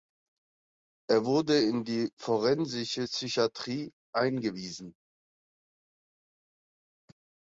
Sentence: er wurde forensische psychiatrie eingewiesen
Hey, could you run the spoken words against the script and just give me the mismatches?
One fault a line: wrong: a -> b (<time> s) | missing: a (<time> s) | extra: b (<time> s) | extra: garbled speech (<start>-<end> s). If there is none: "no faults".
extra: in die (1.6 s)